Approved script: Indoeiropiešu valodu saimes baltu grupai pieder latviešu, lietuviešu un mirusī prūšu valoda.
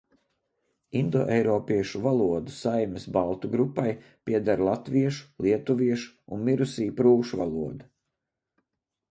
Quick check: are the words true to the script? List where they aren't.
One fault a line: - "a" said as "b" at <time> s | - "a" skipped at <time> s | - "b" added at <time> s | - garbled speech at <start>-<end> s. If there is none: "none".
none